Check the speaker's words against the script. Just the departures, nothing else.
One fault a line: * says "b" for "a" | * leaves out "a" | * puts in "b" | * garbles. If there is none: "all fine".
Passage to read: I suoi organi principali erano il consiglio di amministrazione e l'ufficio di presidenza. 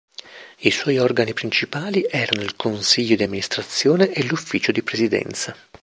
all fine